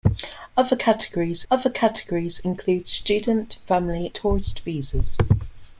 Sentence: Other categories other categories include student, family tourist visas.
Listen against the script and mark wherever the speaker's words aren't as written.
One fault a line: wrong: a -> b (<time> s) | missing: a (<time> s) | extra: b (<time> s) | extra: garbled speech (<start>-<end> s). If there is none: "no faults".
no faults